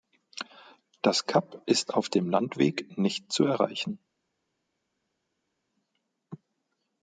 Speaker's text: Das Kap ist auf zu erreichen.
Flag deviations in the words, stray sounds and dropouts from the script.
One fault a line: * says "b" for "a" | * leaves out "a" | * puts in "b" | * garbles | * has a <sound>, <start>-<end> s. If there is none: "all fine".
* puts in "dem Landweg nicht"